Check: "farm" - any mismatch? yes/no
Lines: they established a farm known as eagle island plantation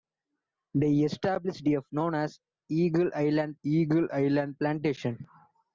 yes